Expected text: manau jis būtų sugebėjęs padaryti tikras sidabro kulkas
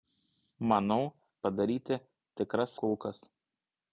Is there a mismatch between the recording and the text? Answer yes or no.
yes